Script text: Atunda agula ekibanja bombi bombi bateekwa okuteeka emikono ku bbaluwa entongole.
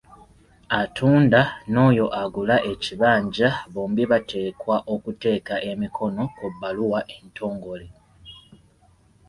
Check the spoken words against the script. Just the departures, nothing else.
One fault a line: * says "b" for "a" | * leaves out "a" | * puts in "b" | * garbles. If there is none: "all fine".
* puts in "n'oyo"
* leaves out "bombi"